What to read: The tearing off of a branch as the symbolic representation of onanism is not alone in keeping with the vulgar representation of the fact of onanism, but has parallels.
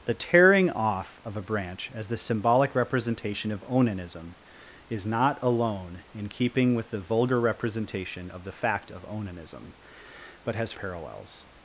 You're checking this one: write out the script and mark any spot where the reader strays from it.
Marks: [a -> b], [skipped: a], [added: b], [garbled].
The tearing off of a branch as the symbolic representation of onanism is not alone in keeping with the vulgar representation of the fact of onanism, but has parallels.